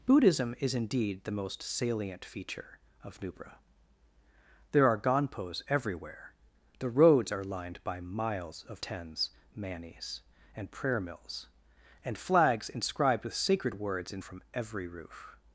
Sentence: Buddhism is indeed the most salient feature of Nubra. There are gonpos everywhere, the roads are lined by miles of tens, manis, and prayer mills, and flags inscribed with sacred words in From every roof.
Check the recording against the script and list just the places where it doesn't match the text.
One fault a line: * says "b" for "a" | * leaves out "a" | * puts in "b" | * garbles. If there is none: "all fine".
all fine